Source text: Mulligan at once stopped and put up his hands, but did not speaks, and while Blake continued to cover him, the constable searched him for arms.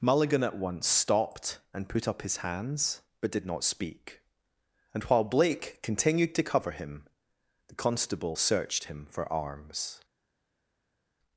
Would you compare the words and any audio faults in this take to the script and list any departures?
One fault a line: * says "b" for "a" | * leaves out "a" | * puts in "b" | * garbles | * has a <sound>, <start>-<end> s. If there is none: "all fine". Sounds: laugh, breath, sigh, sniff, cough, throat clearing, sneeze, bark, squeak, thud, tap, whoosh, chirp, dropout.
* says "speak" for "speaks"